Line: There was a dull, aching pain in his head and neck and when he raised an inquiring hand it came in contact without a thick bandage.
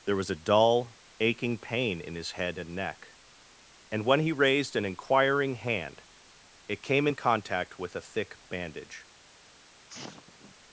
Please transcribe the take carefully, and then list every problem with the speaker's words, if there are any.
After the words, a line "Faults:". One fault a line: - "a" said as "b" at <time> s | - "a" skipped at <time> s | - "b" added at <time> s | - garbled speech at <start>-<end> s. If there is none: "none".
There was a dull, aching pain in his head and neck and when he raised an inquiring hand it came in contact with a thick bandage.
Faults:
- "without" said as "with" at 7.8 s